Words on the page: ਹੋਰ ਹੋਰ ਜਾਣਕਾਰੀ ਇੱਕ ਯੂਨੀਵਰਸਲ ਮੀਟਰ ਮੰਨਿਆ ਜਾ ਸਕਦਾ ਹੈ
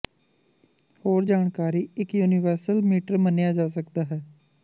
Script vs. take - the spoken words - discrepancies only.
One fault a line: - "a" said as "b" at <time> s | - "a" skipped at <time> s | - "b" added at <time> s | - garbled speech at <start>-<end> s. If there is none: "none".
- "ਹੋਰ" skipped at 1.2 s